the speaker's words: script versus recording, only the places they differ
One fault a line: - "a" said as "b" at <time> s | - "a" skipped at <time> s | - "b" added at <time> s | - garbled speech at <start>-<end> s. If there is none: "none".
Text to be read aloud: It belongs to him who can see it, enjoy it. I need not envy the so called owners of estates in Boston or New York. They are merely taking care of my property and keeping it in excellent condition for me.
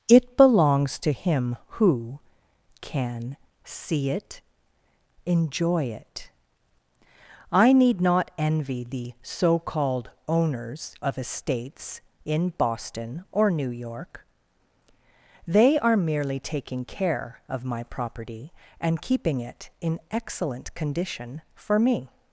none